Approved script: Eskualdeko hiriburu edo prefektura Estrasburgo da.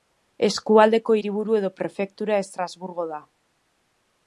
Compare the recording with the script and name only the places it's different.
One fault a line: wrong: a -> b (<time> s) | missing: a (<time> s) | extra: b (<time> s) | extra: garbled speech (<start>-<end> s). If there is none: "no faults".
no faults